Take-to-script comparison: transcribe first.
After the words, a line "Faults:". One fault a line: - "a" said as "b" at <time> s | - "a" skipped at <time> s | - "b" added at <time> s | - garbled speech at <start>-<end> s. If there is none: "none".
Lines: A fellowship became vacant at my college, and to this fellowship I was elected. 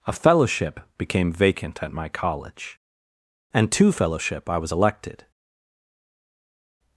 A fellowship became vacant at my college, and to fellowship I was elected.
Faults:
- "this" skipped at 3.9 s